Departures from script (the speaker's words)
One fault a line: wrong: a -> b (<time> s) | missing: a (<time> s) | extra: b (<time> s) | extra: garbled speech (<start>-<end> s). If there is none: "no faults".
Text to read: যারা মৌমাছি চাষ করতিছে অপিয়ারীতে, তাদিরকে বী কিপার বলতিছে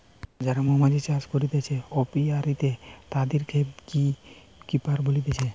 no faults